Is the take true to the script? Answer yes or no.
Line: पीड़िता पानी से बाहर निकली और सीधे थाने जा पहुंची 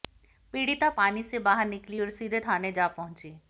yes